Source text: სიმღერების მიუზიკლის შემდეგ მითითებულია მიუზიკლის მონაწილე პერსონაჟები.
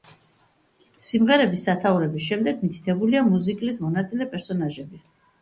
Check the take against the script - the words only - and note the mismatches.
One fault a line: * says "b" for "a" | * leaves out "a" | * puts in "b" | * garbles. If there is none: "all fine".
* says "სათაურების" for "მიუზიკლის"